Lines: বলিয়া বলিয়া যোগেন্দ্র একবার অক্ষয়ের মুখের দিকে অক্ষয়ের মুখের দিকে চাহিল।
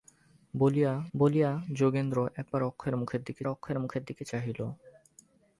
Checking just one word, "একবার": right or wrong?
right